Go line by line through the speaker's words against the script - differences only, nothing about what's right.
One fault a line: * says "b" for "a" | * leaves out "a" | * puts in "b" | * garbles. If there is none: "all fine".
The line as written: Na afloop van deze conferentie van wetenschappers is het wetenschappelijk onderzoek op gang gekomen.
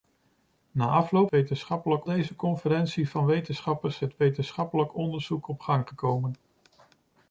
* says "wetenschappelijk" for "van"
* leaves out "is"